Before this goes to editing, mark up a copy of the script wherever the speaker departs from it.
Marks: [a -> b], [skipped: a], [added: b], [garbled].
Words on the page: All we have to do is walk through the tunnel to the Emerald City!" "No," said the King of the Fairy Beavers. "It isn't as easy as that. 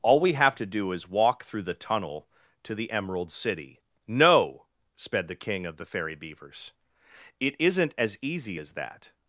All we have to do is walk through the tunnel to the Emerald City!" "No," [said -> sped] the King of the Fairy Beavers. "It isn't as easy as that.